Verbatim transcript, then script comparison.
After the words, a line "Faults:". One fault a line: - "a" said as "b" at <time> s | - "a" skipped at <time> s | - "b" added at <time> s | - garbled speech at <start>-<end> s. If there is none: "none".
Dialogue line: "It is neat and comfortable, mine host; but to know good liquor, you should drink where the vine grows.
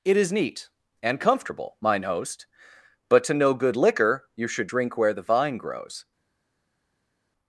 "It is neat and comfortable, mine host; but to know good liquor, you should drink where the vine grows.
Faults:
none